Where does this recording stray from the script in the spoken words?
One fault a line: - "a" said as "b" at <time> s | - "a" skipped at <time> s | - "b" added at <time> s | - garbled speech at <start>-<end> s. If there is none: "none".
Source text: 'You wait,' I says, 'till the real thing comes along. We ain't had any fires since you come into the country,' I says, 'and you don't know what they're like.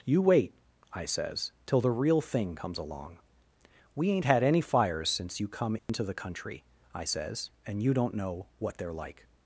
none